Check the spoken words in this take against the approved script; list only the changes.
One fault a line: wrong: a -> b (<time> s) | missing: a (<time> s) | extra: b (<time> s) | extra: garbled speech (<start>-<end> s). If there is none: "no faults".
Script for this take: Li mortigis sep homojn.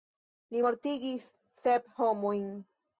no faults